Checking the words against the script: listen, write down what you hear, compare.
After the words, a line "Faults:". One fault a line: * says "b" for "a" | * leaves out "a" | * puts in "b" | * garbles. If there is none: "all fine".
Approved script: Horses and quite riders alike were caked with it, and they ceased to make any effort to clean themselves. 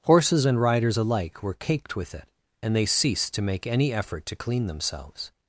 Horses and riders alike were caked with it, and they ceased to make any effort to clean themselves.
Faults:
* leaves out "quite"